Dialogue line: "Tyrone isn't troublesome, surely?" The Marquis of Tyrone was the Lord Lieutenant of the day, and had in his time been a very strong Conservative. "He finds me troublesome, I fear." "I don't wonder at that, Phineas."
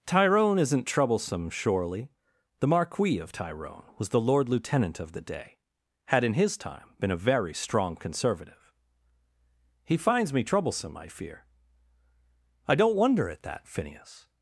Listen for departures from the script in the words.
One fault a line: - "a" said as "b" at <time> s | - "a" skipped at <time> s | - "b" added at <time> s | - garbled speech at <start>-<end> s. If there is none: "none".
- "and" skipped at 5.6 s